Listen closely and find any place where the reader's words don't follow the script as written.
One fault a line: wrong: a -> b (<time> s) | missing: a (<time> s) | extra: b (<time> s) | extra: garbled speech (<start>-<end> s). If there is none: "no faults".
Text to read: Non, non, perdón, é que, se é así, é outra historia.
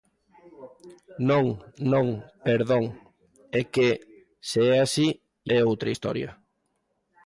no faults